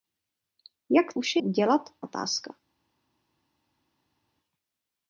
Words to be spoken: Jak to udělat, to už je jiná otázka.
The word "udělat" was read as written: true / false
false